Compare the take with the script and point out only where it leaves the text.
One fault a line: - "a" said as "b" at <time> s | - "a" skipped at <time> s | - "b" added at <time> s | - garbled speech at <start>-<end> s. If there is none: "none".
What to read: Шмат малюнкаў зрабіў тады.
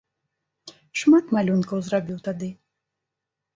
none